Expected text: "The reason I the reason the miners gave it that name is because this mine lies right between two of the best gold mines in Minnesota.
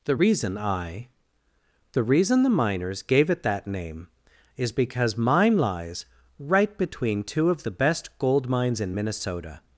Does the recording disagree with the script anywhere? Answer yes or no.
yes